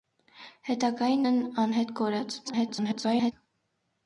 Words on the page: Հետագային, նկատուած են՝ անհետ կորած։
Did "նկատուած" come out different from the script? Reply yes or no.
yes